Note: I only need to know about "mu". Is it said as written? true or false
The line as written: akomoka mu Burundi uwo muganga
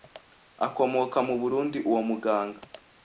true